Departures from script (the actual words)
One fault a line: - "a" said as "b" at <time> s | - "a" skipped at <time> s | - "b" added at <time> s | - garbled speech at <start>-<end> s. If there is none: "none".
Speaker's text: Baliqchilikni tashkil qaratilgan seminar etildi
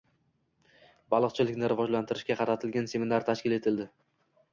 - "tashkil" said as "rivojlantirishga" at 1.7 s
- "tashkil" added at 3.3 s